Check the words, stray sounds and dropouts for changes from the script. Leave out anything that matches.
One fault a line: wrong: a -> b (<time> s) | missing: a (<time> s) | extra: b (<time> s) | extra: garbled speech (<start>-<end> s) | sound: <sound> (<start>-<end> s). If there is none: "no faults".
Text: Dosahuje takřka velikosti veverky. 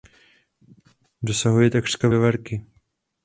missing: velikosti (2.1 s)